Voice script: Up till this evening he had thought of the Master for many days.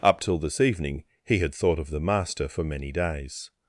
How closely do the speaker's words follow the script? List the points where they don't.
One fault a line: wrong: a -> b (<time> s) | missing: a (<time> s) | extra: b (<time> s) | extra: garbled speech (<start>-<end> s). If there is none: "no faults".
no faults